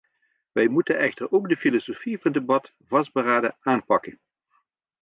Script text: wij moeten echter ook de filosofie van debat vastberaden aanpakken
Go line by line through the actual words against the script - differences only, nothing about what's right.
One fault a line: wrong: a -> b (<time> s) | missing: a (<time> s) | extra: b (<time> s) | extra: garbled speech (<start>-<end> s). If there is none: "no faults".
no faults